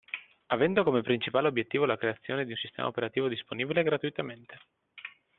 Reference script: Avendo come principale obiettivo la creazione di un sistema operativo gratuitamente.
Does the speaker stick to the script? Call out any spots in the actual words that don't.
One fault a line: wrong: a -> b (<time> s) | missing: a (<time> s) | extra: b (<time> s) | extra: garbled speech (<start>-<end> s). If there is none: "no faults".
extra: disponibile (3.3 s)